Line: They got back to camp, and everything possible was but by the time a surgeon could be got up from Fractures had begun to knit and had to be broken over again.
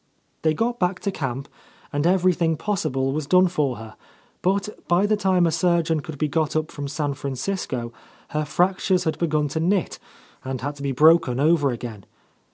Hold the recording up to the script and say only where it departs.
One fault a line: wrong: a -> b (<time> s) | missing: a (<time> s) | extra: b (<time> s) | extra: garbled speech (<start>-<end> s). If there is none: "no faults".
extra: done for her (3.3 s)
extra: San Francisco her (6.9 s)